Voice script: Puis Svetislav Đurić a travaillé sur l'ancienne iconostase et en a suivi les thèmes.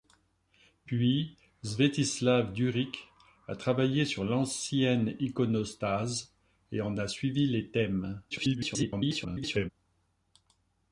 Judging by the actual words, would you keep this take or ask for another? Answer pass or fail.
fail